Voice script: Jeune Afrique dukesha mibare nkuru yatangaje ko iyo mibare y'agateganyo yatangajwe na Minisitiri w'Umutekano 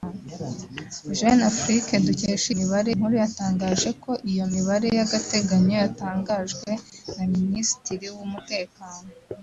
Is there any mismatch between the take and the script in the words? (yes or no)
no